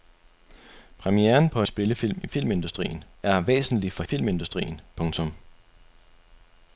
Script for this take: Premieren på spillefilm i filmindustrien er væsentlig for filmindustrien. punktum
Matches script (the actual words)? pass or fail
pass